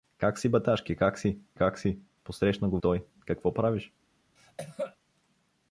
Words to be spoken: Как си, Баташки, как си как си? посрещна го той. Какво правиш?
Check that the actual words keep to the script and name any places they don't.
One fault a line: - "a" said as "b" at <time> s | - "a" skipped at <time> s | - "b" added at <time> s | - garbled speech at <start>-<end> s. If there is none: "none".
none